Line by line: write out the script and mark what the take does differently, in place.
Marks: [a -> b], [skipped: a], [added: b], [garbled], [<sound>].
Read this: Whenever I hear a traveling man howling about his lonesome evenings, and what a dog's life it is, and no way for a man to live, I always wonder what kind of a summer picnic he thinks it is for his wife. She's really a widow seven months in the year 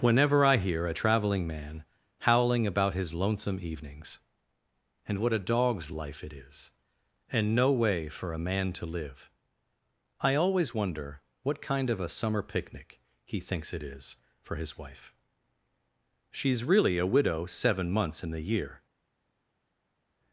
Whenever I hear a traveling man howling about his lonesome evenings, and what a dog's life it is, and no way for a man to live, I always wonder what kind of a summer picnic he thinks it is for his wife. She's really a widow seven months in the year